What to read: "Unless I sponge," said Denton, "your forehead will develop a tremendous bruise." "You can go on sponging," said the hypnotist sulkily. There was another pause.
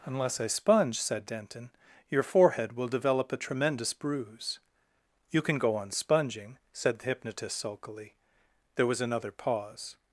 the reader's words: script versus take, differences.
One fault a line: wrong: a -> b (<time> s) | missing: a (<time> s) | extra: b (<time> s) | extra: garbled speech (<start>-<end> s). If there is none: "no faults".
no faults